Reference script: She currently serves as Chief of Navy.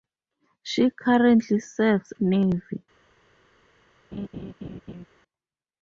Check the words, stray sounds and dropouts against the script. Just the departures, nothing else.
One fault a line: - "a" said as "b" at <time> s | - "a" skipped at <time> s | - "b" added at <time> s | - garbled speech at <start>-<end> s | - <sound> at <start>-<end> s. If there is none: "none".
- "as Chief of" skipped at 2.1 s
- laugh at 4.1-5.1 s